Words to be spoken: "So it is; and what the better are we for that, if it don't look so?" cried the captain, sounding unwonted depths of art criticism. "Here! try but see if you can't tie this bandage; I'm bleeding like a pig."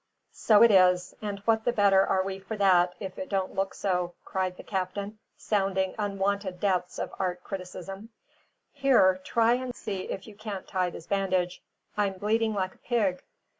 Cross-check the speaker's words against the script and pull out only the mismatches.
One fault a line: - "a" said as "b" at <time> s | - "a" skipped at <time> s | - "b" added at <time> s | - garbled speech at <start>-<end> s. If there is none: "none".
- "but" said as "and" at 9.6 s